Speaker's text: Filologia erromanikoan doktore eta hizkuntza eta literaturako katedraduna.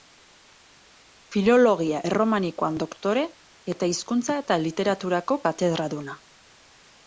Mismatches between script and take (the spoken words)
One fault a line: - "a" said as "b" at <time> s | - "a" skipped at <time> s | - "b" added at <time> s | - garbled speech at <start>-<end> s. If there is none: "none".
none